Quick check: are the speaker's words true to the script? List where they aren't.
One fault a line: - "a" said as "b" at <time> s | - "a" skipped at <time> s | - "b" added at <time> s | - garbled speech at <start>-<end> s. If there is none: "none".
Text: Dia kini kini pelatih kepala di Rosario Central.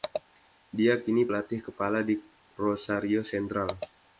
- "kini" skipped at 1.3 s